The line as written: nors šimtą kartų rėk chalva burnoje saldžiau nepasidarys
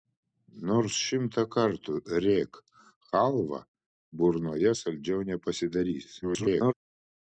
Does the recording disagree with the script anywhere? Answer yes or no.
yes